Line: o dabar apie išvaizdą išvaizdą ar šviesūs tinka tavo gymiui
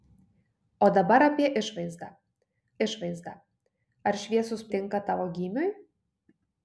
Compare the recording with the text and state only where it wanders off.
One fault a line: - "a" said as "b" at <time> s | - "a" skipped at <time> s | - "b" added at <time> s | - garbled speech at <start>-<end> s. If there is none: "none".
none